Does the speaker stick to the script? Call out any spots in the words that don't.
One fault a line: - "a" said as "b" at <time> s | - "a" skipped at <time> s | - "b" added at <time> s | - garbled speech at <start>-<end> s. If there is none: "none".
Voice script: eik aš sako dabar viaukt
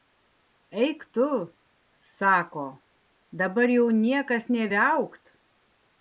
- "aš" said as "tu" at 1.1 s
- "jau niekas nė" added at 3.8 s